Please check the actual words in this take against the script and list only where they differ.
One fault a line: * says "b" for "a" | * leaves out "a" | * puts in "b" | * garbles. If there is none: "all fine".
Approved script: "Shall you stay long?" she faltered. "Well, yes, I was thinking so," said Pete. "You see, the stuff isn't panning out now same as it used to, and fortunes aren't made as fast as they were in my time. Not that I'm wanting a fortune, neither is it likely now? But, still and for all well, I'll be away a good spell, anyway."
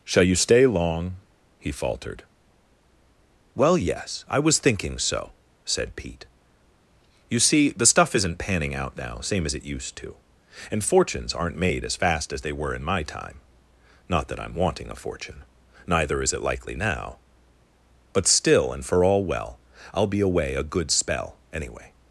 * says "he" for "she"